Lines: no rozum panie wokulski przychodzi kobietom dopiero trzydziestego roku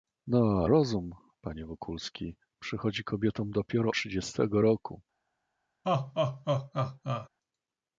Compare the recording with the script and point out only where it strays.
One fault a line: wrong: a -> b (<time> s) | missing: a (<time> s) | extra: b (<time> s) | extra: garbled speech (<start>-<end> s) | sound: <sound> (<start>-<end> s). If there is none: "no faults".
sound: laugh (5.8-7.3 s)